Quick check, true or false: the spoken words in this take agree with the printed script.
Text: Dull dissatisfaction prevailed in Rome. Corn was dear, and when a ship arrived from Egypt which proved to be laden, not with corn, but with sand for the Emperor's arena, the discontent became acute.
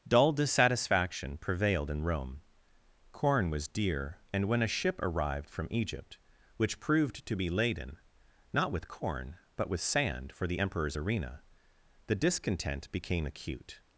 true